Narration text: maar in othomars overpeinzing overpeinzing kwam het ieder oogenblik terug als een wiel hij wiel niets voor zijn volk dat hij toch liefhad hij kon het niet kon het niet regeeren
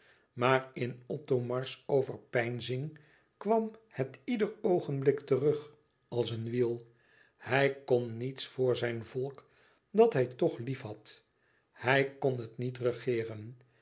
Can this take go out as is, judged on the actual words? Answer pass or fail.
fail